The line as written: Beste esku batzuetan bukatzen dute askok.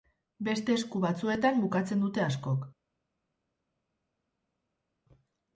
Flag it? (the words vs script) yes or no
no